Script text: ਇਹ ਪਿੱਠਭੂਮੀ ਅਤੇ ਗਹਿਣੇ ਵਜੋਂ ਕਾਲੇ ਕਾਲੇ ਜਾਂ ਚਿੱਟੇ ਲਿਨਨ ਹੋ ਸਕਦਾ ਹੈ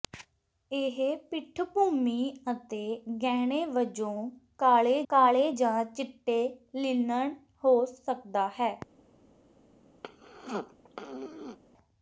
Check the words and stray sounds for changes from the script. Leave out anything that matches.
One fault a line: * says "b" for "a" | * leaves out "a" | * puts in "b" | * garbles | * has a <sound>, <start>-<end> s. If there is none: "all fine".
* has a throat clearing, 10.0-11.6 s